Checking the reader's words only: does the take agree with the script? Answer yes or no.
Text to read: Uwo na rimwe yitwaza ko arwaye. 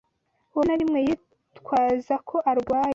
yes